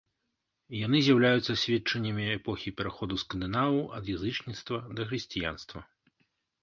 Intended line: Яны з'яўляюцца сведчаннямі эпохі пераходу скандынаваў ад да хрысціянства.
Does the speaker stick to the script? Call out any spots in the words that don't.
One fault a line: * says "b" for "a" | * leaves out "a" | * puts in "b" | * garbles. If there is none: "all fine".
* puts in "язычніцтва"